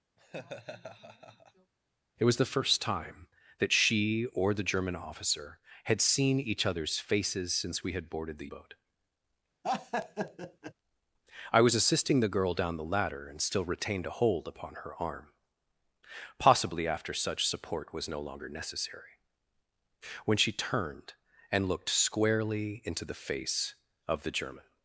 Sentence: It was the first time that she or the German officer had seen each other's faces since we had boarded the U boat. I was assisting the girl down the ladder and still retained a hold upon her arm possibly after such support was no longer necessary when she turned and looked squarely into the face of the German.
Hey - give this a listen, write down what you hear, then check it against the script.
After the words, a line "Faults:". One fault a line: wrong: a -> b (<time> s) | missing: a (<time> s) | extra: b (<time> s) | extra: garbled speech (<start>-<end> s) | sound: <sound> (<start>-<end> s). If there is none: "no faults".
It was the first time that she or the German officer had seen each other's faces since we had boarded the Boat. I was assisting the girl down the ladder and still retained a hold upon her arm possibly after such support was no longer necessary when she turned and looked squarely into the face of the German.
Faults:
sound: laugh (0.2-1.7 s)
missing: U (8.5 s)
sound: laugh (9.6-10.7 s)